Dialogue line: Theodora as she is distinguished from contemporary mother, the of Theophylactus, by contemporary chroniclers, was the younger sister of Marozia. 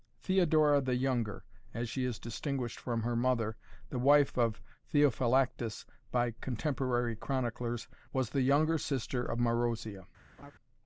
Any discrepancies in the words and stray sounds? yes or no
yes